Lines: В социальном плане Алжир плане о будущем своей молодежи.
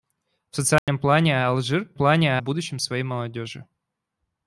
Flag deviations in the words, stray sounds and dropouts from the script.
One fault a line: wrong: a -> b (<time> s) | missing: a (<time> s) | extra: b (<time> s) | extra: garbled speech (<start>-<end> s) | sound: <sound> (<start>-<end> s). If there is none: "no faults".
sound: dropout (0.8-0.9 s)